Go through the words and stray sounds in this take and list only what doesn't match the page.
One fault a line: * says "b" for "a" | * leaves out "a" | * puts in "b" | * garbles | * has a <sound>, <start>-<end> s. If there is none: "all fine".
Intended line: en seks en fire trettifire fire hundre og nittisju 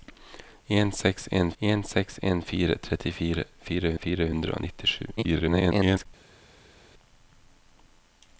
* puts in "en seks en"
* puts in "fire"
* garbles